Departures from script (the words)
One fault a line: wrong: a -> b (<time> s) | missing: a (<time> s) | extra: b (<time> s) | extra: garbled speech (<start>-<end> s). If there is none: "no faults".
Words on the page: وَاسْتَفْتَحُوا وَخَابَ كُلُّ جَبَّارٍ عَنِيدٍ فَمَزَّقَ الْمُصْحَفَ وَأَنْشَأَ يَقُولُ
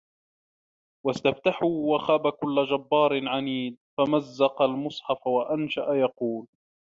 no faults